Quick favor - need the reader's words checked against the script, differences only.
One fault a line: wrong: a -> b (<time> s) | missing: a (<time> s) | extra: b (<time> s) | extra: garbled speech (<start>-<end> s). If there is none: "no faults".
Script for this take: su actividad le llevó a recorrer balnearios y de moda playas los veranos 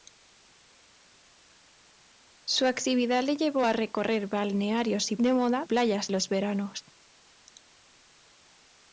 no faults